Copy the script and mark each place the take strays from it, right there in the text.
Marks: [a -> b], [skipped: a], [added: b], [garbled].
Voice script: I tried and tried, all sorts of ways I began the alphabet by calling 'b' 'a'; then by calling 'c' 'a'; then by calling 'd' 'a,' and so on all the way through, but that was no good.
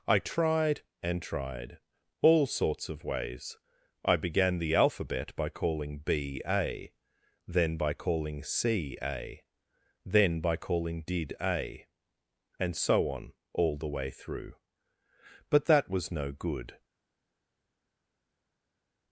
I tried and tried, all sorts of ways I began the alphabet by calling 'b' 'a'; then by calling 'c' 'a'; then by calling ['d' -> did] 'a,' and so on all the way through, but that was no good.